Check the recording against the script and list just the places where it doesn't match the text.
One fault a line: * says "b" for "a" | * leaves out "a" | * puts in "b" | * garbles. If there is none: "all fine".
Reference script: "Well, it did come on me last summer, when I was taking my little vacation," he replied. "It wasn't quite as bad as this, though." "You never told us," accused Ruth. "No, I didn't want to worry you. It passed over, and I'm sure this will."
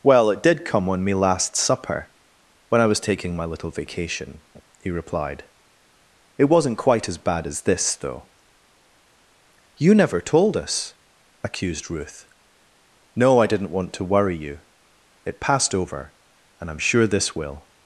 * says "supper" for "summer"